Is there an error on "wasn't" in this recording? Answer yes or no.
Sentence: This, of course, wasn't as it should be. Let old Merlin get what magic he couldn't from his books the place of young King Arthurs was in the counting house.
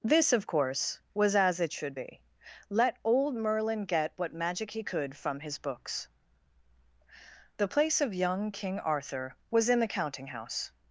yes